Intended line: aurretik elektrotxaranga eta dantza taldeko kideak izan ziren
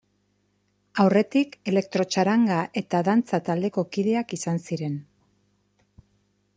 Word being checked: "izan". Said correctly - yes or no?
yes